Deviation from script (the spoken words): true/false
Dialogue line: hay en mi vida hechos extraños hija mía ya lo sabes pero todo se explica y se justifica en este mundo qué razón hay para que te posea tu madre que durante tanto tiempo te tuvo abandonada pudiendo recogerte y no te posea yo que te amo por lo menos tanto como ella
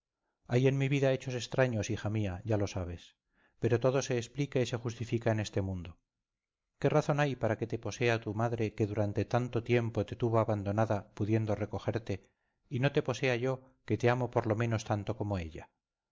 false